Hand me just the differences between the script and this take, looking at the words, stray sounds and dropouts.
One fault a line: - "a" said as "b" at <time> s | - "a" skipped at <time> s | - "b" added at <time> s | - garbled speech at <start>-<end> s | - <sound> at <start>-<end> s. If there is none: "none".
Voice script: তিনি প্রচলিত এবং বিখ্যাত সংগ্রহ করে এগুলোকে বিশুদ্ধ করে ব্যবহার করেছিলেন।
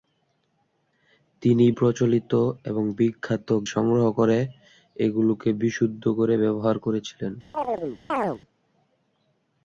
- chirp at 7.5-8.4 s